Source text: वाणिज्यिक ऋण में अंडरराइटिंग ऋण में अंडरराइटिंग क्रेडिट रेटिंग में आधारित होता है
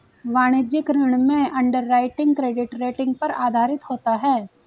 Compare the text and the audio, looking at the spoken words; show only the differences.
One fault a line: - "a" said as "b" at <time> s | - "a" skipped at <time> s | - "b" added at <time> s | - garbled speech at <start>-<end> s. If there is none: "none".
- "ऋण में अंडरराइटिंग" skipped at 2.3 s
- "में" said as "पर" at 3.1 s